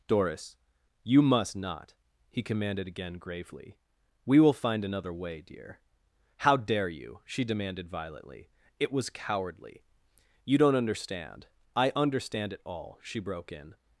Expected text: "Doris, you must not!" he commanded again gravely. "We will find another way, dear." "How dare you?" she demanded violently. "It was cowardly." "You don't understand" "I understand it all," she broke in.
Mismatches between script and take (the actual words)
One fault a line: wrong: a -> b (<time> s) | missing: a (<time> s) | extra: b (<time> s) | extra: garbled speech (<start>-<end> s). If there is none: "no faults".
no faults